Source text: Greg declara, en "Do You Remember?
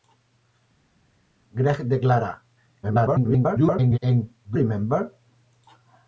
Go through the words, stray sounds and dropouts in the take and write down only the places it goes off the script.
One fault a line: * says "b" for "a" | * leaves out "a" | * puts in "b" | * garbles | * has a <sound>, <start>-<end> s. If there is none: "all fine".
* garbles
* leaves out "You"